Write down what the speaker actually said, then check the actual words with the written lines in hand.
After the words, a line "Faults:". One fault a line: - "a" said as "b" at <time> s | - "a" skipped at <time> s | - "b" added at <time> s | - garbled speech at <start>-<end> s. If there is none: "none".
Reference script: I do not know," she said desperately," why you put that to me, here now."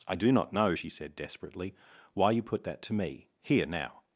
I do not know," she said desperately," why you put that to me, here now."
Faults:
none